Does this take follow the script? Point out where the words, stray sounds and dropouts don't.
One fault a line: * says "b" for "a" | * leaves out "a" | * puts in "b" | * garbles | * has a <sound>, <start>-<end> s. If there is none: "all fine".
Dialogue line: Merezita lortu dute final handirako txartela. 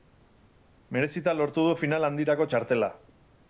* says "du" for "dute"